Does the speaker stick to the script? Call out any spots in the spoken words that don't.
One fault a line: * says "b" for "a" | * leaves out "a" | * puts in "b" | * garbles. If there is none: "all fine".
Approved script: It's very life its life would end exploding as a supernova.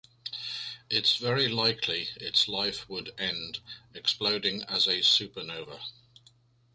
* says "likely" for "life"